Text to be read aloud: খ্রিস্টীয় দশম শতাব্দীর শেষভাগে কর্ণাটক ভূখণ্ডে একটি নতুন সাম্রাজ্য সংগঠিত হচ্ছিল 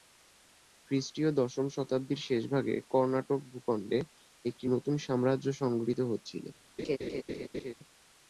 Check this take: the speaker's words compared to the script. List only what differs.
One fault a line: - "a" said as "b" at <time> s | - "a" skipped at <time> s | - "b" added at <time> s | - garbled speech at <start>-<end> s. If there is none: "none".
none